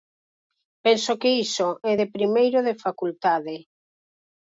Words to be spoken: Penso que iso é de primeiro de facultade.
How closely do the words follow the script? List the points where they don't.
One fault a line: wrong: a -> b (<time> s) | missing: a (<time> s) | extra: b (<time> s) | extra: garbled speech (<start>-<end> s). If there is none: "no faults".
no faults